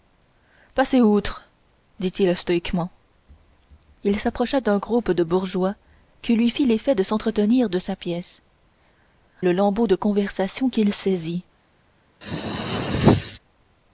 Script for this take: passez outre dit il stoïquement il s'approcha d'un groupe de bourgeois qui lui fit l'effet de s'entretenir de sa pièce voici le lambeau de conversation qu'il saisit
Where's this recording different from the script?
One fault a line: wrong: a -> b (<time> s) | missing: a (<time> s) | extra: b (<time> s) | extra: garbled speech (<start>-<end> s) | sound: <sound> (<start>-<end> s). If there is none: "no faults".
missing: voici (8.4 s)
sound: throat clearing (12.2-13.4 s)